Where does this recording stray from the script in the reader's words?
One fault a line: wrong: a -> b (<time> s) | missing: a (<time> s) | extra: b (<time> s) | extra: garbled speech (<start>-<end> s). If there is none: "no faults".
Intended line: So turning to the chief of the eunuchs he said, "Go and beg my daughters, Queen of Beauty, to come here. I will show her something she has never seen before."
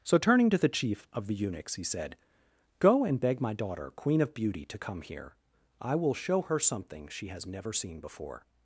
wrong: daughters -> daughter (3.5 s)